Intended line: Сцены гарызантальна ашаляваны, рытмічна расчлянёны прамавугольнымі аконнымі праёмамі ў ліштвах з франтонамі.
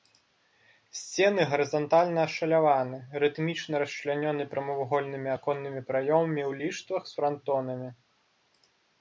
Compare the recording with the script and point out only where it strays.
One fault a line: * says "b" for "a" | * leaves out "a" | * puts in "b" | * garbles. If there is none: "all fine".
all fine